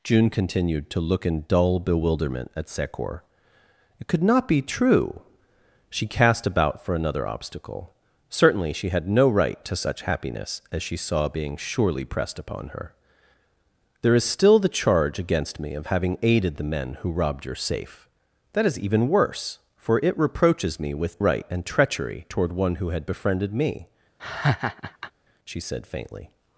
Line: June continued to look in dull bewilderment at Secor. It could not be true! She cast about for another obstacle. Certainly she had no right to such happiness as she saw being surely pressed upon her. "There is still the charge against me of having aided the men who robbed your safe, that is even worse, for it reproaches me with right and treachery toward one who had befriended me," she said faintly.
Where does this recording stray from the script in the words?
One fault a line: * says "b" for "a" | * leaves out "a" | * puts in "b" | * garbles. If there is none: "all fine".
all fine